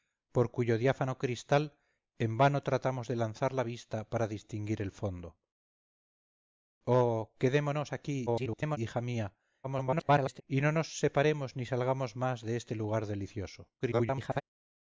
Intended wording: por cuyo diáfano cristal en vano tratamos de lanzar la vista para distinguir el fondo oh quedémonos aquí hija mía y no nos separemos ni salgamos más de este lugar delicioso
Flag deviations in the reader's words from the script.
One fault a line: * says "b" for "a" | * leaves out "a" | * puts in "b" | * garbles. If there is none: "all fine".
* garbles
* garbles
* garbles